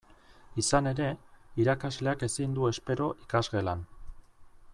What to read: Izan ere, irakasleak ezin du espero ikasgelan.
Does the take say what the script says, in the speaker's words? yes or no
yes